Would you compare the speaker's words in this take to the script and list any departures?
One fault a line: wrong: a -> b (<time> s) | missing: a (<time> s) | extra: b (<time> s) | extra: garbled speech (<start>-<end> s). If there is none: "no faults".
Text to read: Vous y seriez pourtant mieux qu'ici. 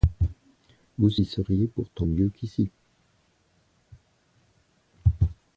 no faults